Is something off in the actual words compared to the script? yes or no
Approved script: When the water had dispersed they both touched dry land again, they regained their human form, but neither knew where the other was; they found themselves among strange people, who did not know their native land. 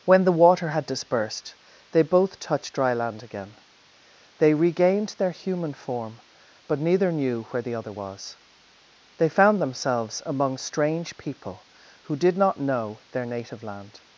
no